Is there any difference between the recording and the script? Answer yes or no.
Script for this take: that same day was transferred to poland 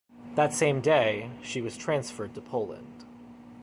yes